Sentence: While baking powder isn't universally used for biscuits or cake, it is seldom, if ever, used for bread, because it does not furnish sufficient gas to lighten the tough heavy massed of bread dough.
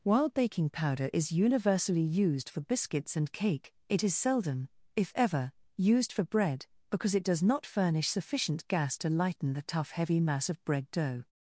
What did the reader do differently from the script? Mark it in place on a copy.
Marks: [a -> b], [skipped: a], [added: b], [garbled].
While baking powder [isn't -> is] universally used for biscuits [or -> and] cake, it is seldom, if ever, used for bread, because it does not furnish sufficient gas to lighten the tough heavy [massed -> mass] of bread dough.